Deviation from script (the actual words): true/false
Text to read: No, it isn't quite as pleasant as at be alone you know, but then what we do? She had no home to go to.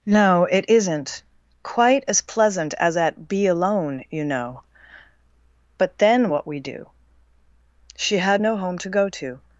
false